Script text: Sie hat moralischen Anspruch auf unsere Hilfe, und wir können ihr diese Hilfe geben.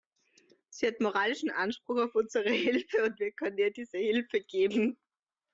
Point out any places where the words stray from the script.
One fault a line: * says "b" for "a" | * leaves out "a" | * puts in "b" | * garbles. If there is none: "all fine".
all fine